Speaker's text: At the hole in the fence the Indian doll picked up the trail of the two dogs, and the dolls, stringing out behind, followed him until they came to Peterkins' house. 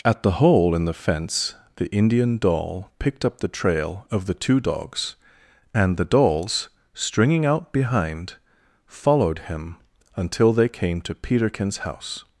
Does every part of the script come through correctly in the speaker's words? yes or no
yes